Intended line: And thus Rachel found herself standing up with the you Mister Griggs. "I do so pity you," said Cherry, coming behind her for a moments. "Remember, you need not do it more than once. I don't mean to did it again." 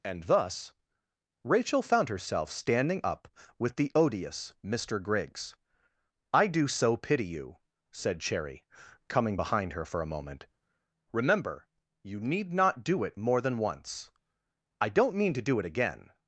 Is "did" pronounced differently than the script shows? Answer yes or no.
yes